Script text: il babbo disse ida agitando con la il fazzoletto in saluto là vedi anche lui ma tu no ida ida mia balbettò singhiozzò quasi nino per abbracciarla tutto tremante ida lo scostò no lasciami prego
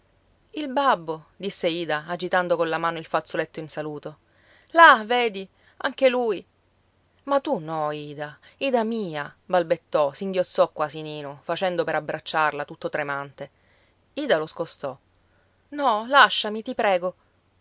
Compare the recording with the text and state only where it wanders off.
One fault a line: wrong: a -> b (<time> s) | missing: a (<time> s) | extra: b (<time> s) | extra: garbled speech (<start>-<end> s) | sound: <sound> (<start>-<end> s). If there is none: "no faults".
extra: mano (2.8 s)
extra: facendo (11.4 s)
extra: ti (16.6 s)